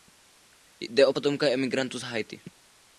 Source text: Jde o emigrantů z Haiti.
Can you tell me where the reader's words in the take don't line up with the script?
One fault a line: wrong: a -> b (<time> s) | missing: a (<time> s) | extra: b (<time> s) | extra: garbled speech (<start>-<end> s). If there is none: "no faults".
extra: potomka (1.1 s)